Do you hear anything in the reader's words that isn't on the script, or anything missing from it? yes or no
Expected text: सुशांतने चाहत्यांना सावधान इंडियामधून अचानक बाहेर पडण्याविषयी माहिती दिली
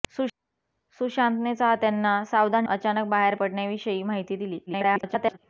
yes